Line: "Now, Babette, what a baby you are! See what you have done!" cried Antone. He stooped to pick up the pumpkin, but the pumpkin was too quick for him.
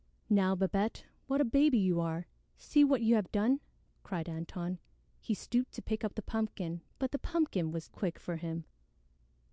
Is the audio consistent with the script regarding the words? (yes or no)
no